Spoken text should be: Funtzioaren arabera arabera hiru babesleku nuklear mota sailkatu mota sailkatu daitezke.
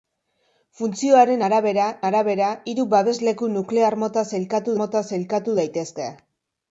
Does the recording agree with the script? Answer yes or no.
yes